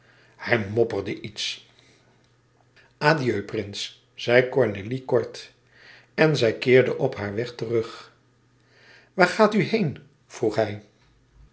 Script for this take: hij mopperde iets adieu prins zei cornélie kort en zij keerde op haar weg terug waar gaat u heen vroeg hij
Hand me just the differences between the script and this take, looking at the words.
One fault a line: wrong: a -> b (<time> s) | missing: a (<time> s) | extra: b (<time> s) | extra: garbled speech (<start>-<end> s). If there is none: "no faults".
no faults